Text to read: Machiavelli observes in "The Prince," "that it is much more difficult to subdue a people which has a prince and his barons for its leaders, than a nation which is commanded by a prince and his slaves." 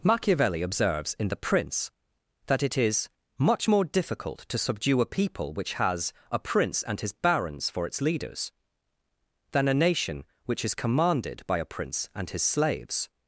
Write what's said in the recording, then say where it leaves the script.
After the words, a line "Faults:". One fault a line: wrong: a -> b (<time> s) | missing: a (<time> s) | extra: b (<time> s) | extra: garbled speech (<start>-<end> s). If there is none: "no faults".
Machiavelli observes in "The Prince," "that it is much more difficult to subdue a people which has a prince and his barons for its leaders, than a nation which is commanded by a prince and his slaves."
Faults:
no faults